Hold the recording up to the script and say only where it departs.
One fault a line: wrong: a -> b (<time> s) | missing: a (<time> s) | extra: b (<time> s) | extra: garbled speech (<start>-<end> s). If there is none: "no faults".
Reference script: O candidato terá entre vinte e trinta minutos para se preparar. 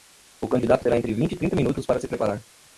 no faults